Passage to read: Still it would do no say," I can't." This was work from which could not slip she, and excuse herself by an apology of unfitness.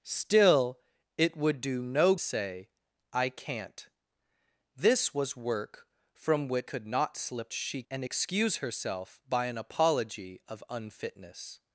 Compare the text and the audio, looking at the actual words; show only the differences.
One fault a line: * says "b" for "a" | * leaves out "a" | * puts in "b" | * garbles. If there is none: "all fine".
all fine